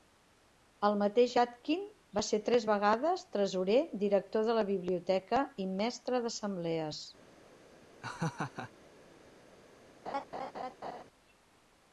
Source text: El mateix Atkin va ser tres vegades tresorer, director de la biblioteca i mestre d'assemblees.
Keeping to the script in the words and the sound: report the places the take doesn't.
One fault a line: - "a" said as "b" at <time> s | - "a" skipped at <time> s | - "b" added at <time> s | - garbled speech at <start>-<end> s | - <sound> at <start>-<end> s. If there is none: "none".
- laugh at 8.0-8.7 s
- laugh at 10.1-11.0 s